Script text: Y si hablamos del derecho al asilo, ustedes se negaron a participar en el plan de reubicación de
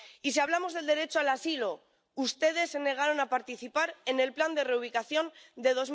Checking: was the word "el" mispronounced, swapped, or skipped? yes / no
no